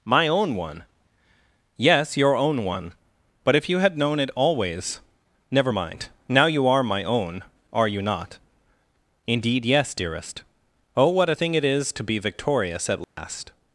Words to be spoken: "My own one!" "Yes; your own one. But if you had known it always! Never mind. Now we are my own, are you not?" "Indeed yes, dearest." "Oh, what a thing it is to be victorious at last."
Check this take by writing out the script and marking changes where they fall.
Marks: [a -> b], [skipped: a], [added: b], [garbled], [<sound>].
"My own one!" "Yes; your own one. But if you had known it always! Never mind. Now [we -> you] are my own, are you not?" "Indeed yes, dearest." "Oh, what a thing it is to be victorious at last." [dropout]